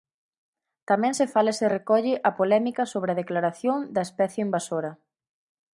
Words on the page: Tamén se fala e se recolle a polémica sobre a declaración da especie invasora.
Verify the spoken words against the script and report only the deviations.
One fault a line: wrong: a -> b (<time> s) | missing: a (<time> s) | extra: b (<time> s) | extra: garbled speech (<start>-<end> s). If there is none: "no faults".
no faults